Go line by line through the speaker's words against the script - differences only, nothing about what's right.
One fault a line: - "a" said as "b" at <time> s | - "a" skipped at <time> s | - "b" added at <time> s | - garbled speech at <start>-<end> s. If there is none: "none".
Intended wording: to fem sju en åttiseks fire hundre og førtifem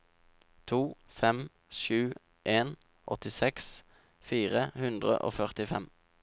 none